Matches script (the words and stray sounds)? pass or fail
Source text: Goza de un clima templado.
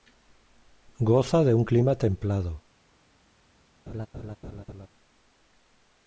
fail